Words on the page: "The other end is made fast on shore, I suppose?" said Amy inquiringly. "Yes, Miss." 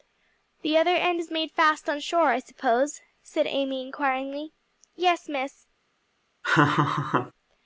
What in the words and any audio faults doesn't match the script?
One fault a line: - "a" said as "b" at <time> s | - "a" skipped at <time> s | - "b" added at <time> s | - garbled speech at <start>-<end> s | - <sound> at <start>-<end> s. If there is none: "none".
- laugh at 6.4-7.3 s